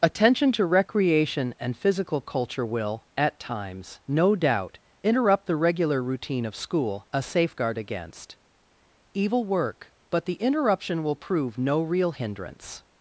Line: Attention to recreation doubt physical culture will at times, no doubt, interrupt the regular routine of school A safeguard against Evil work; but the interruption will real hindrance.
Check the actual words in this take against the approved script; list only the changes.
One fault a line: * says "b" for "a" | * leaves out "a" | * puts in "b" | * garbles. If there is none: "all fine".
* says "and" for "doubt"
* puts in "prove no"